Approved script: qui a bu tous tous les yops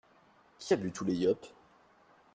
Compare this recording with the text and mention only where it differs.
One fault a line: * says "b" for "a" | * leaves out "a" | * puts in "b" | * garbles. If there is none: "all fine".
* leaves out "tous"